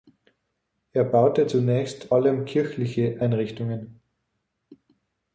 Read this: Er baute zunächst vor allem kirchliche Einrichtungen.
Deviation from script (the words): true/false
true